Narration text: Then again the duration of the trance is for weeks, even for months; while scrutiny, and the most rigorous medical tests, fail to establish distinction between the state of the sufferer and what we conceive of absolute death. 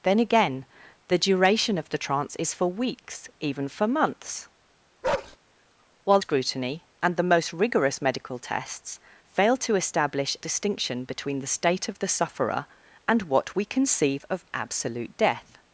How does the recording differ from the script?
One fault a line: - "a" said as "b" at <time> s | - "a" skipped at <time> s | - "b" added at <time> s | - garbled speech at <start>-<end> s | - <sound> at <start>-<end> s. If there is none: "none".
- bark at 5.0-5.4 s